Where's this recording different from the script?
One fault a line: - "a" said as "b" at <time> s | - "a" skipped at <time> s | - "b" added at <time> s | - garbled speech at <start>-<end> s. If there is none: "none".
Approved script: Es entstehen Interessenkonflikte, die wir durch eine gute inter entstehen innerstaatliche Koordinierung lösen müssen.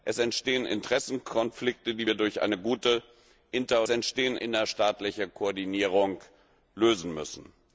none